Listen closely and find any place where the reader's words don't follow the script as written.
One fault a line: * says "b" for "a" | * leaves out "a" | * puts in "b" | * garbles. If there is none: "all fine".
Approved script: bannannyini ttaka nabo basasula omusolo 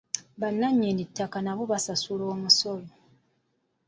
all fine